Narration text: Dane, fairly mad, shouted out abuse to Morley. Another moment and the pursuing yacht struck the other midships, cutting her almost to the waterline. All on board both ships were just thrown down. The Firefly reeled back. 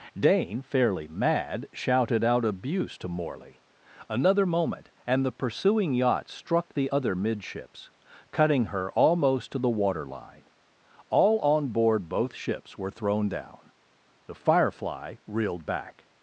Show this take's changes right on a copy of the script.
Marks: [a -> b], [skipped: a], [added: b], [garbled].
Dane, fairly mad, shouted out abuse to Morley. Another moment and the pursuing yacht struck the other midships, cutting her almost to the waterline. All on board both ships were [skipped: just] thrown down. The Firefly reeled back.